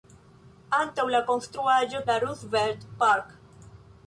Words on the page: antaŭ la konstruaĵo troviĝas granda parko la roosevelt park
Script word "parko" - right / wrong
wrong